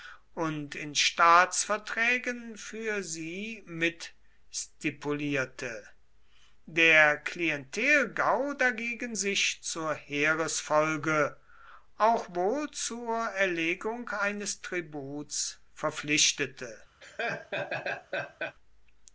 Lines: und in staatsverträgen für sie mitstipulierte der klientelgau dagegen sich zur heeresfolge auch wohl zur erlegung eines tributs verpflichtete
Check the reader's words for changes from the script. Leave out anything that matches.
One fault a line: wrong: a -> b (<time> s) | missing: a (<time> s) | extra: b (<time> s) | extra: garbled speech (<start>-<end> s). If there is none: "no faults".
no faults